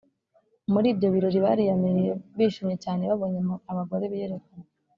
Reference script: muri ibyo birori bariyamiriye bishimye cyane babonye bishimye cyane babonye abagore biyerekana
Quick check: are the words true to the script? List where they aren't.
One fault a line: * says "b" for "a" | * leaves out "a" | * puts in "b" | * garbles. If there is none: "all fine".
* leaves out "bishimye cyane babonye"